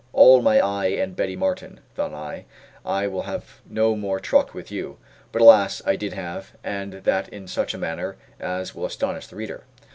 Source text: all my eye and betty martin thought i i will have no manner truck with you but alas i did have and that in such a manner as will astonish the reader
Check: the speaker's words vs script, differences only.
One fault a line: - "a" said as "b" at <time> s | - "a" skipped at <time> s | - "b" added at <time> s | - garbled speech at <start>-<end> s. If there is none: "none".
- "manner" said as "more" at 3.9 s